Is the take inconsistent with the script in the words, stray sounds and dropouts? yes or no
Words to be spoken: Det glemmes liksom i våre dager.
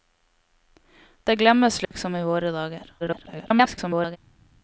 yes